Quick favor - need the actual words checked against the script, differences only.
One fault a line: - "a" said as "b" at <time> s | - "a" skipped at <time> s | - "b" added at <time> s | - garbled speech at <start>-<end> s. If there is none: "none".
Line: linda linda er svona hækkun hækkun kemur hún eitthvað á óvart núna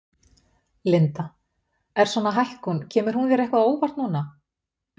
- "linda" skipped at 1.2 s
- "hækkun" skipped at 2.8 s
- "þér" added at 3.3 s